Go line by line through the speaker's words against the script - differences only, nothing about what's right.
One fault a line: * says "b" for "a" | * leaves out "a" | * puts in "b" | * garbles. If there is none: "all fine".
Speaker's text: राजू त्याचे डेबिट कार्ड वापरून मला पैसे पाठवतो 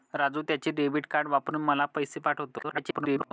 * garbles